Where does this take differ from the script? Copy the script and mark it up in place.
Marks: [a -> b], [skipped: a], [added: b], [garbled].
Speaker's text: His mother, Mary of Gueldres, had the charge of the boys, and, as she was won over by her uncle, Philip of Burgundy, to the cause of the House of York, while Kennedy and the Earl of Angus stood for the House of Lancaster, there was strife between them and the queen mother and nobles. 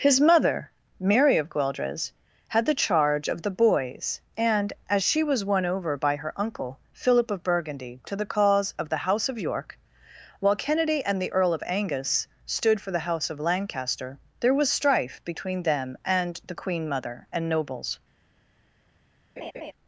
His mother, Mary of Gueldres, had the charge of the boys, and, as she was won over by her uncle, Philip of Burgundy, to the cause of the House of York, while Kennedy and the Earl of Angus stood for the House of Lancaster, there was strife between them and the queen mother and nobles.